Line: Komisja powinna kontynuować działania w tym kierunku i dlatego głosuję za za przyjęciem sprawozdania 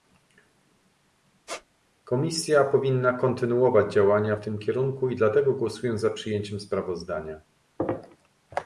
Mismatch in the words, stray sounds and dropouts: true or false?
true